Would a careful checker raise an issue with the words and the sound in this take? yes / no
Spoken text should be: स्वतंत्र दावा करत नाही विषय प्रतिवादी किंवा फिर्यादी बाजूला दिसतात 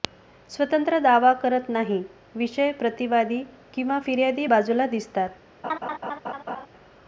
yes